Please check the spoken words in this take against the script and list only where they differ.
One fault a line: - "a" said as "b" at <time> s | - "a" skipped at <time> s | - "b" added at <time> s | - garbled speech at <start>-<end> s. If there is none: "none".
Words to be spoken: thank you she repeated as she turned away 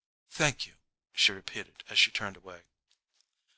none